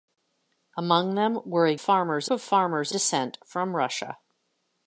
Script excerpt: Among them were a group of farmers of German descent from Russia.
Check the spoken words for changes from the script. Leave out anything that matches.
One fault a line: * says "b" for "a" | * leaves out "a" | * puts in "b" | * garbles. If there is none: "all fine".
* says "farmers" for "group"
* leaves out "of German"